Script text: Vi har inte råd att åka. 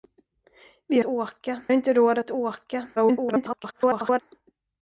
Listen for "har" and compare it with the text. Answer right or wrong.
wrong